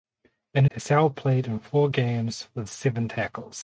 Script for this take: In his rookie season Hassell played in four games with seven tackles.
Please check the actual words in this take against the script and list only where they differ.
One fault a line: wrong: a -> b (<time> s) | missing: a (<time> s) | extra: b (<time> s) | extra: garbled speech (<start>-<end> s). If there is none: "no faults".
missing: his rookie season (0.7 s)